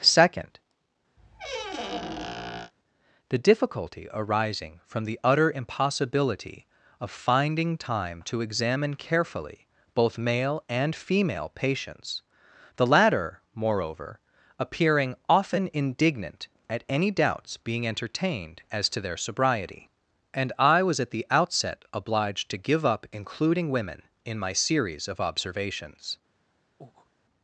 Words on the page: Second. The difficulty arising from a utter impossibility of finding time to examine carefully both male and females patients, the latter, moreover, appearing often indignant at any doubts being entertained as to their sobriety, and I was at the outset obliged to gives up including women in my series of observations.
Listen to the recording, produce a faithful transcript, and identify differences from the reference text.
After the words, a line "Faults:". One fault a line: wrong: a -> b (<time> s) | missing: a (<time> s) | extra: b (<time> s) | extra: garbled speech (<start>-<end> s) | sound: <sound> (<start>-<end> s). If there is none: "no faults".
Second. The difficulty arising from the utter impossibility of finding time to examine carefully both male and female patients, the latter, moreover, appearing often indignant at any doubts being entertained as to their sobriety, and I was at the outset obliged to give up including women in my series of observations.
Faults:
sound: squeak (1.2-2.7 s)
wrong: a -> the (5.0 s)
wrong: females -> female (10.9 s)
wrong: gives -> give (22.6 s)
sound: breath (26.8-27.1 s)